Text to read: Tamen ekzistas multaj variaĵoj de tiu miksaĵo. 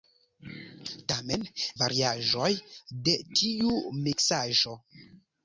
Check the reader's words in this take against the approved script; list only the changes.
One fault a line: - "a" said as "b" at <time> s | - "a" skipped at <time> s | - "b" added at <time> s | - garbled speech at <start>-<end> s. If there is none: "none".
- "ekzistas multaj" skipped at 1.4 s